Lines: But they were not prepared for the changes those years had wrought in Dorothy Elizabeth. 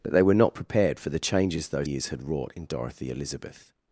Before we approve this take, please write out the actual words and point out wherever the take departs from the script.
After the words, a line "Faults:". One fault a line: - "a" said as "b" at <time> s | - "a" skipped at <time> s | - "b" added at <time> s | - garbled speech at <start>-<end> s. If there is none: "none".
But they were not prepared for the changes those years had wrought in Dorothy Elizabeth.
Faults:
none